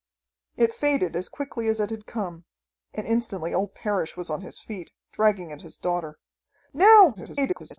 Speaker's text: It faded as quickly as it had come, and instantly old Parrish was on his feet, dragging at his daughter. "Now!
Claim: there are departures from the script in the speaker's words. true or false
true